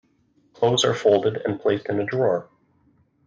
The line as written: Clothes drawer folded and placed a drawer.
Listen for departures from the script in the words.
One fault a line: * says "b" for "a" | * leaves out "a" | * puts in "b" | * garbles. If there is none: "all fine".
* says "are" for "drawer"
* puts in "in"